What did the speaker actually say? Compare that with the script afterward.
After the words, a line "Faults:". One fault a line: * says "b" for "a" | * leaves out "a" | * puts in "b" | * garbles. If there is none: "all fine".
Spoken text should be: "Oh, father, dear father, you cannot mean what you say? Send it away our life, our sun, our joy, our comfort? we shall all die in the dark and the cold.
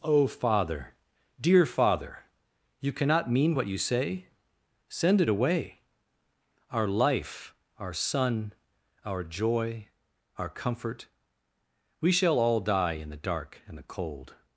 "Oh, father, dear father, you cannot mean what you say? Send it away our life, our sun, our joy, our comfort? we shall all die in the dark and the cold.
Faults:
all fine